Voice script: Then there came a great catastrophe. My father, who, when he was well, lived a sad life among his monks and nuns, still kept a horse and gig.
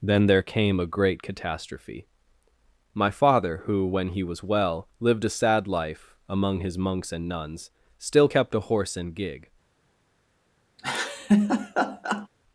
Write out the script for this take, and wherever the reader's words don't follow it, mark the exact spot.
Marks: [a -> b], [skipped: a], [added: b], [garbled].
Then there came a great catastrophe. My father, who, when he was well, lived a sad life among his monks and nuns, still kept a horse and gig.